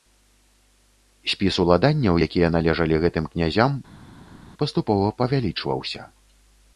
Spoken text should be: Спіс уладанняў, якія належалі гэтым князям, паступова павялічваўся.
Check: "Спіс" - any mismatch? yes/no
no